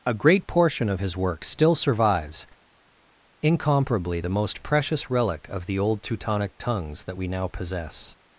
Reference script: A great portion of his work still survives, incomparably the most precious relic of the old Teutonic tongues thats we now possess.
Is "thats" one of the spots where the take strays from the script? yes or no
yes